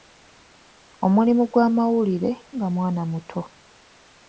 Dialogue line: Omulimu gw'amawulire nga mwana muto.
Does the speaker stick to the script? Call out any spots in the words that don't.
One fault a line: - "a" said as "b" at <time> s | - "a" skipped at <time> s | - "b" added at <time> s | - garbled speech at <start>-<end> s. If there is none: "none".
none